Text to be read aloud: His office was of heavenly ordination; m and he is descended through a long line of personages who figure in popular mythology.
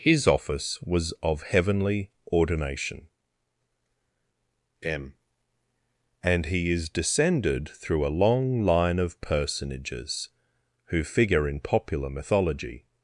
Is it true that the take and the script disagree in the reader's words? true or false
false